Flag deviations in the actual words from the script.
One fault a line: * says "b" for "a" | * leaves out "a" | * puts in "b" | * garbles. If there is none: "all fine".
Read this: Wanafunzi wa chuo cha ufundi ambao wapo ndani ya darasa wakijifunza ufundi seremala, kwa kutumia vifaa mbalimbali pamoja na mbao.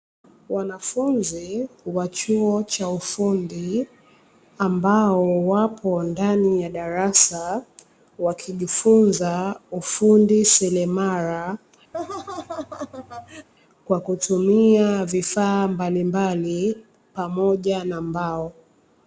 all fine